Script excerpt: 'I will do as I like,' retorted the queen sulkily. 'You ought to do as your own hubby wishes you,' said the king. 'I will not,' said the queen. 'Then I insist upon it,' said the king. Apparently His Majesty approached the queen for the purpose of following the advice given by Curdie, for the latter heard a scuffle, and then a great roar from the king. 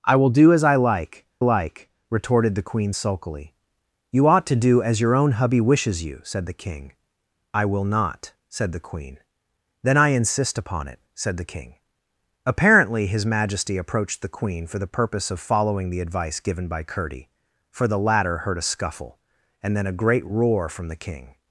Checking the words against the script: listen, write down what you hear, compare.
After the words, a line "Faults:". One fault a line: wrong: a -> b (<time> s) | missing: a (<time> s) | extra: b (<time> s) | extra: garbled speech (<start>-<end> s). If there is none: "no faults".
'I will do as I like like,' retorted the queen sulkily. 'You ought to do as your own hubby wishes you,' said the king. 'I will not,' said the queen. 'Then I insist upon it,' said the king. Apparently His Majesty approached the queen for the purpose of following the advice given by Curdie, for the latter heard a scuffle, and then a great roar from the king.
Faults:
extra: like (1.4 s)